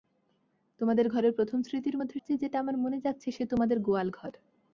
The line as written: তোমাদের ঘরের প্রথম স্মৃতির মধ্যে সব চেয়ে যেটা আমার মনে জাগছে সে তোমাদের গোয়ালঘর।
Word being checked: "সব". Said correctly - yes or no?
no